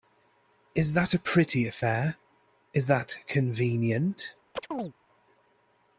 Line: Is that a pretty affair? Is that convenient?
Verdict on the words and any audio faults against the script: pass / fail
fail